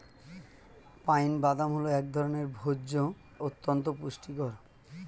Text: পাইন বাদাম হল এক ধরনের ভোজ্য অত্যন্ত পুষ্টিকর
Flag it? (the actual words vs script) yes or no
no